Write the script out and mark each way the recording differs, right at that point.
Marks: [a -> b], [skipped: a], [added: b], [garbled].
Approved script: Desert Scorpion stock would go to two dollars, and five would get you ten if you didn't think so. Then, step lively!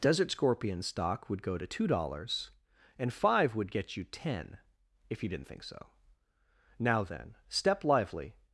Desert Scorpion stock would go to two dollars, and five would get you ten if you didn't think so. [added: Now] Then, step lively!